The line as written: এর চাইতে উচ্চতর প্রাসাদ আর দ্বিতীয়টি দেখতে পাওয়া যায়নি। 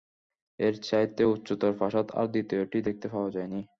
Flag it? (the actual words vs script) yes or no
no